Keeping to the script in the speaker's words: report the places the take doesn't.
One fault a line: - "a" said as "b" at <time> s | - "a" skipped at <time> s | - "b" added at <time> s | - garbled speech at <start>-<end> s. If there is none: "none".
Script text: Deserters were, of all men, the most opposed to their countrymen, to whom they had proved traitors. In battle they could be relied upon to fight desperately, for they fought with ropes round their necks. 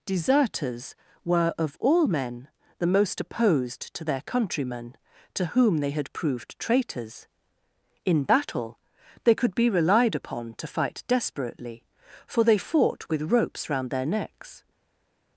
none